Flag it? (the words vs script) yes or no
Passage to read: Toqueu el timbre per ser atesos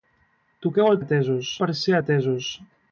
yes